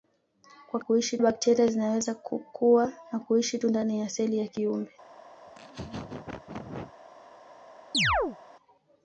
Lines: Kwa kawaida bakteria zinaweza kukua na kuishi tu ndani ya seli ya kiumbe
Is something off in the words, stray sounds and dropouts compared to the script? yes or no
yes